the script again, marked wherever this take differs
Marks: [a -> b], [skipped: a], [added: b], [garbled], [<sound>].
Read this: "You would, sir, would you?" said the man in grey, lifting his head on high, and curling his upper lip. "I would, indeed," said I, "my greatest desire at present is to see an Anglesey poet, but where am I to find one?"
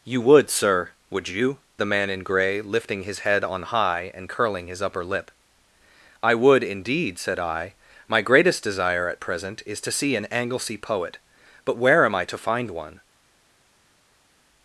"You would, sir, would you?" [skipped: said] the man in grey, lifting his head on high, and curling his upper lip. "I would, indeed," said I, "my greatest desire at present is to see an Anglesey poet, but where am I to find one?"